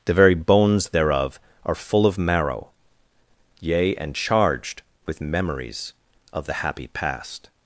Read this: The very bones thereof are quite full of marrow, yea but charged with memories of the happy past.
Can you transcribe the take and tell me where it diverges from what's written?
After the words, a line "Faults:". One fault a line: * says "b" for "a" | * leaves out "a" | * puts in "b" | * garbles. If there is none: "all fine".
The very bones thereof are full of marrow, yea and charged with memories of the happy past.
Faults:
* leaves out "quite"
* says "and" for "but"